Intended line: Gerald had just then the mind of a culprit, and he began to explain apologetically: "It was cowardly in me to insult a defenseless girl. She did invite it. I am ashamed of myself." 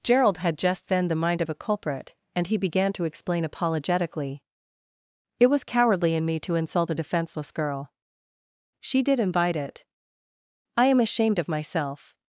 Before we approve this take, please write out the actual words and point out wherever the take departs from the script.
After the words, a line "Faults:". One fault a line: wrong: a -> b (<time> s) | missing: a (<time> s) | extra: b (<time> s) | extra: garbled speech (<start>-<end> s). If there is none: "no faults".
Gerald had just then the mind of a culprit, and he began to explain apologetically: "It was cowardly in me to insult a defenseless girl. She did invite it. I am ashamed of myself."
Faults:
no faults